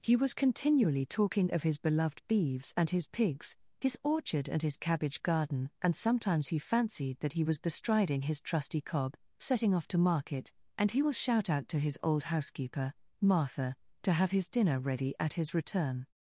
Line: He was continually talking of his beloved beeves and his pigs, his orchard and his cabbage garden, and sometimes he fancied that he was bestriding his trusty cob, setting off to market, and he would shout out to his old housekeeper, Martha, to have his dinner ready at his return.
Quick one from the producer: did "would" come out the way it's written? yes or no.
no